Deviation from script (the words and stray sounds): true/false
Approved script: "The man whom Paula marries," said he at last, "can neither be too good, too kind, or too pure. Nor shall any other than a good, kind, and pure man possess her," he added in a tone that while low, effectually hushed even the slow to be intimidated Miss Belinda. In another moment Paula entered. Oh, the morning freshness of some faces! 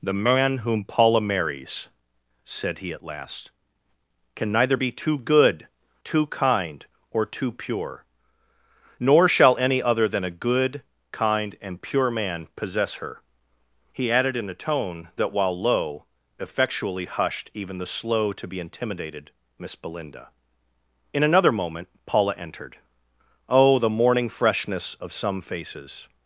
false